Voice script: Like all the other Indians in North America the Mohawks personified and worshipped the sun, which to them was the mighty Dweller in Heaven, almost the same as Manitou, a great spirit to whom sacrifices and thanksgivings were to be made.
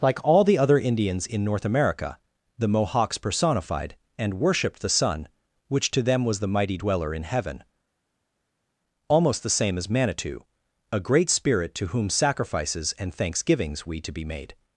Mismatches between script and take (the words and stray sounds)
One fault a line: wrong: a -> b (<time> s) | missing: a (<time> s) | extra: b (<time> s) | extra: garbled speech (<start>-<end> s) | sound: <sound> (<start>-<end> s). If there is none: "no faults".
wrong: were -> we (13.8 s)